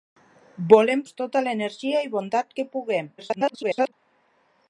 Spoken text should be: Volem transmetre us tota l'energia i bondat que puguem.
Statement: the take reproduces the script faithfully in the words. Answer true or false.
false